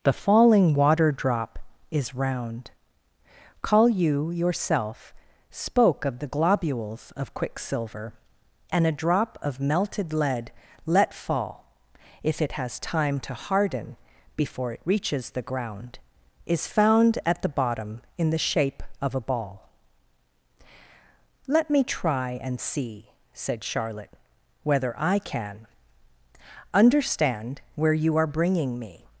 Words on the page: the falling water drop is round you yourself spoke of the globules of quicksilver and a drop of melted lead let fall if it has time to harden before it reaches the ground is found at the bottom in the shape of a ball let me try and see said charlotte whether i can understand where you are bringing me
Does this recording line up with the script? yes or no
no